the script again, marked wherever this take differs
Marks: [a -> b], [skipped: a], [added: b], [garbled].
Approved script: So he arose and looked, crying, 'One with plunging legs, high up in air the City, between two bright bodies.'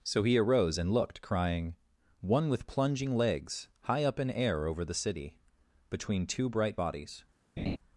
So he arose and looked, crying, 'One with plunging legs, high up in air [added: over] the City, between two bright bodies.'